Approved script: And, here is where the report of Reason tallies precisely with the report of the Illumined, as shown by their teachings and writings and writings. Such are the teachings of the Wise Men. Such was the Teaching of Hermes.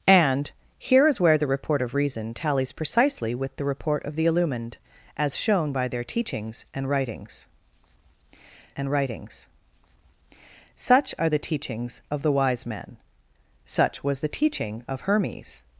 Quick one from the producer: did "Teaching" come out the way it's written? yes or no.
yes